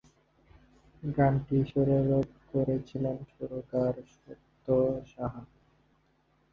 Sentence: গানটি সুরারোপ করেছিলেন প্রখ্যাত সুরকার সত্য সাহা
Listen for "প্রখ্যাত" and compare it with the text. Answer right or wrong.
wrong